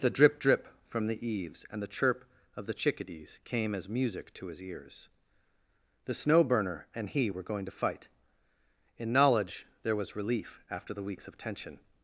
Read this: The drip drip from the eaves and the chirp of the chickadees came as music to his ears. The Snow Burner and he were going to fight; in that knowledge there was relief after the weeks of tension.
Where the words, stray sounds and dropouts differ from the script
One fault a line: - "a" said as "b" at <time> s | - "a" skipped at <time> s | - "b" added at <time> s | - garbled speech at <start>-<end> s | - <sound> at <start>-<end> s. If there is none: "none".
- "that" skipped at 9.1 s